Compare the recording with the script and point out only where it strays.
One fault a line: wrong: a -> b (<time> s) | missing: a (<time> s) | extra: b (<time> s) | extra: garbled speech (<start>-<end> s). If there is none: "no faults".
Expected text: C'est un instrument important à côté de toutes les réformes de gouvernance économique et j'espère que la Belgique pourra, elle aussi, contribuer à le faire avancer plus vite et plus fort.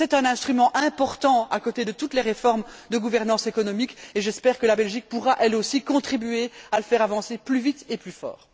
no faults